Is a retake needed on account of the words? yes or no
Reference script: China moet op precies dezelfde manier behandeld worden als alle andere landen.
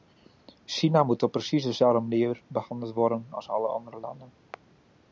no